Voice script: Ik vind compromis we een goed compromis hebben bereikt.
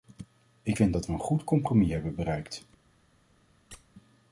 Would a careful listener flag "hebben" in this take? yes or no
no